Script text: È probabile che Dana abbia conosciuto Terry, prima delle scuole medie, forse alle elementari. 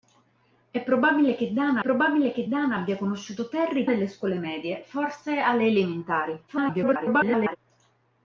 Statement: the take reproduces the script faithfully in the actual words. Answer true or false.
false